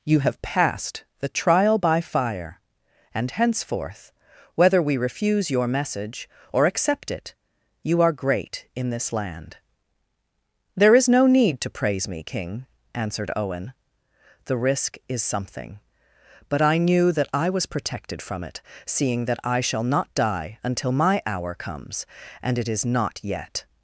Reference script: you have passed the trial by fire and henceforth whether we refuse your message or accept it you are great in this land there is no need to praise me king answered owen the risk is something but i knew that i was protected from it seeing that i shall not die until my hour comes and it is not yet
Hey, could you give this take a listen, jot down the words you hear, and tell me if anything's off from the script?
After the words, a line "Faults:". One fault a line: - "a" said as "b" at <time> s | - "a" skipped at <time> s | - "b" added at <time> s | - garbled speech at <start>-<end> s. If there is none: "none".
you have passed the trial by fire and henceforth whether we refuse your message or accept it you are great in this land there is no need to praise me king answered owen the risk is something but i knew that i was protected from it seeing that i shall not die until my hour comes and it is not yet
Faults:
none